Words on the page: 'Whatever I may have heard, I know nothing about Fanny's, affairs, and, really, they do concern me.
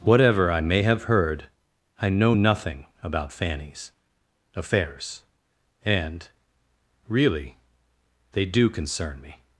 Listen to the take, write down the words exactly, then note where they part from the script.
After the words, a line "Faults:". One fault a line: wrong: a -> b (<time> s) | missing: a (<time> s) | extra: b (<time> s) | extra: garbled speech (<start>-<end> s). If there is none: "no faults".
'Whatever I may have heard, I know nothing about Fanny's, affairs, and, really, they do concern me.
Faults:
no faults